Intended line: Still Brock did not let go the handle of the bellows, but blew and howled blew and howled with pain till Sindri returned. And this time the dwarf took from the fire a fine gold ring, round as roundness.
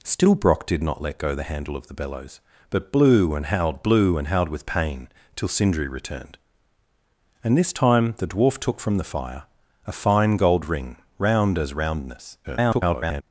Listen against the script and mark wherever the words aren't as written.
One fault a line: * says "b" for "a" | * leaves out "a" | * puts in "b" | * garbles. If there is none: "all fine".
* garbles